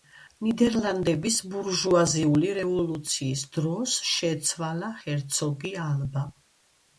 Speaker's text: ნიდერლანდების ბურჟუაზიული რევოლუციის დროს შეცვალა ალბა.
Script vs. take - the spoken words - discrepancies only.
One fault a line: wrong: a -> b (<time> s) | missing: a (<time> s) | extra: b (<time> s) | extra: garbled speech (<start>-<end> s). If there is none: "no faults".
extra: ჰერცოგი (5.0 s)